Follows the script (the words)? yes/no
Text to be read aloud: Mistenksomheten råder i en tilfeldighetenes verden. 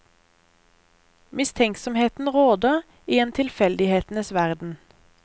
yes